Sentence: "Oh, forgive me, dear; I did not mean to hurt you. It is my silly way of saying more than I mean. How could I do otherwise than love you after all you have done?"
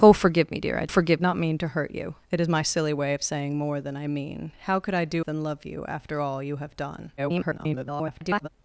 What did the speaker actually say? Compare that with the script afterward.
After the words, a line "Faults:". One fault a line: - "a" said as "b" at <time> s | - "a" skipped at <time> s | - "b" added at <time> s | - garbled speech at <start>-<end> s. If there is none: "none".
"Oh, forgive me, dear; I forgive not mean to hurt you. It is my silly way of saying more than I mean. How could I do than love you after all you have done?" [garbled]
Faults:
- "did" said as "forgive" at 0.9 s
- "otherwise" skipped at 5.3 s
- garbled speech at 7.2-8.5 s